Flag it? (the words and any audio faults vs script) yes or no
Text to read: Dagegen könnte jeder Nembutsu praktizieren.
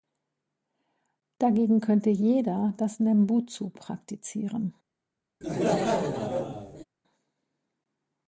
yes